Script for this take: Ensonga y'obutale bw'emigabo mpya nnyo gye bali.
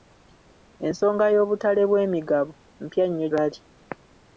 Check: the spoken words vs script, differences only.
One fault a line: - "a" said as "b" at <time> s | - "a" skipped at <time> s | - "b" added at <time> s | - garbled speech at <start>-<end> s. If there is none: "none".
- "gye" skipped at 3.3 s